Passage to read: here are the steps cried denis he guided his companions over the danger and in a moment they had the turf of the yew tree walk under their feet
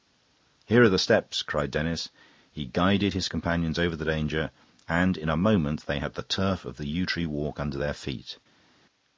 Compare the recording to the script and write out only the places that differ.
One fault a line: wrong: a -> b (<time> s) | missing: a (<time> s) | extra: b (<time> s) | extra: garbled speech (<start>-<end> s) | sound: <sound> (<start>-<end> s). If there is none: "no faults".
no faults